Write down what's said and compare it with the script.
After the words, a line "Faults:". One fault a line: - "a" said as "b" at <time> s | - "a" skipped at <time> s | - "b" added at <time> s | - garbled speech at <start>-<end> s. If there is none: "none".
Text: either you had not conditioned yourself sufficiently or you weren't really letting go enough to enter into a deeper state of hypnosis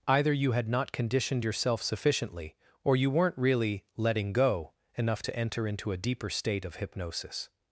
either you had not conditioned yourself sufficiently or you weren't really letting go enough to enter into a deeper state of hypnosis
Faults:
none